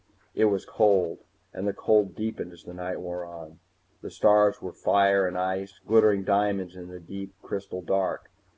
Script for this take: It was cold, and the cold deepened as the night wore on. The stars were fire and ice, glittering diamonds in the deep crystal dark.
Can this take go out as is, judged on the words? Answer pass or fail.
pass